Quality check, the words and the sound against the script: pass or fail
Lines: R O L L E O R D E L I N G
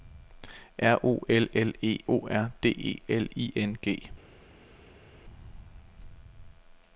pass